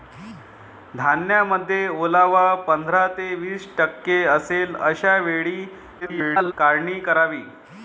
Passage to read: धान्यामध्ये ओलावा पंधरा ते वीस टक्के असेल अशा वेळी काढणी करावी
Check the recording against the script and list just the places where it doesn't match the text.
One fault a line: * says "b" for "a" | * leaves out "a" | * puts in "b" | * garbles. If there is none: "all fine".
* garbles